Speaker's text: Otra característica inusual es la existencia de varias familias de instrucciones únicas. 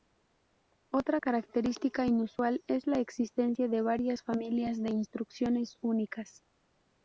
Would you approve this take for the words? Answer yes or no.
yes